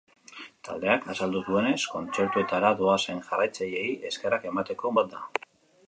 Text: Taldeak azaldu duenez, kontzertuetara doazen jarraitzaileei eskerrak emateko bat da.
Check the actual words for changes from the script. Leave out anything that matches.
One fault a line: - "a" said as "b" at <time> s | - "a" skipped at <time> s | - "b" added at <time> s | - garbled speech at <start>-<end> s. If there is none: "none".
none